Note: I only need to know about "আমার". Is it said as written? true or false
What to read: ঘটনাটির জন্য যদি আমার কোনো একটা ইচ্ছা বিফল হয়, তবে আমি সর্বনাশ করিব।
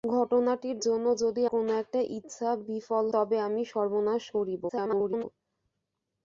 false